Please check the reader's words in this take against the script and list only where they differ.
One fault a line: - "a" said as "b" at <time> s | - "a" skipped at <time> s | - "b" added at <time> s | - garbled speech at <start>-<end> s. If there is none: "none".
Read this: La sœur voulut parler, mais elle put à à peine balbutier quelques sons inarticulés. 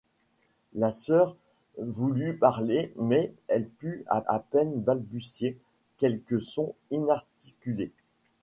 none